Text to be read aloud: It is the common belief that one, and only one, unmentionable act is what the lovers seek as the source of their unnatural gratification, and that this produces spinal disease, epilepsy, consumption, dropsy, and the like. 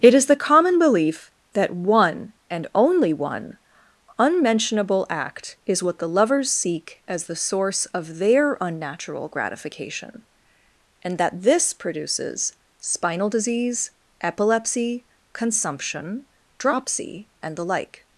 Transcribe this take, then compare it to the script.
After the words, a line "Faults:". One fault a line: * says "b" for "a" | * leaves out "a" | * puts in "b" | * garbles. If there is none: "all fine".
It is the common belief that one, and only one, unmentionable act is what the lovers seek as the source of their unnatural gratification, and that this produces spinal disease, epilepsy, consumption, dropsy, and the like.
Faults:
all fine